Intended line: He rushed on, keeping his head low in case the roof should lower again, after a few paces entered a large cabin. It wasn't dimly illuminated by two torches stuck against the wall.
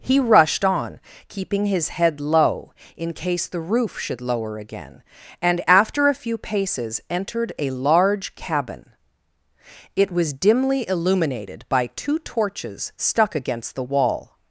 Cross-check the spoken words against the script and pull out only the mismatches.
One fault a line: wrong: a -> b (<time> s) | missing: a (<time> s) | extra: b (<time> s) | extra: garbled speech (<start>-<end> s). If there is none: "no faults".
extra: and (5.4 s)
wrong: wasn't -> was (10.1 s)